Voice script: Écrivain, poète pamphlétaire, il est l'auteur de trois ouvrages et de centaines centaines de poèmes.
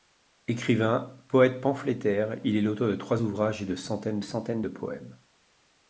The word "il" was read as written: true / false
true